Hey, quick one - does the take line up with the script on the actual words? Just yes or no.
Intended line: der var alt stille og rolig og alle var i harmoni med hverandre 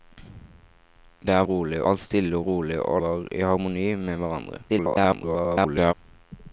no